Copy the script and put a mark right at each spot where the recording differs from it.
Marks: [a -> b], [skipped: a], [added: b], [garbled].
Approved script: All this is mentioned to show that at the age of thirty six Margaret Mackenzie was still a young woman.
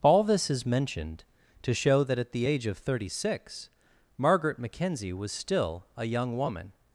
All this is mentioned to show that at the age of thirty six Margaret Mackenzie was still a young woman.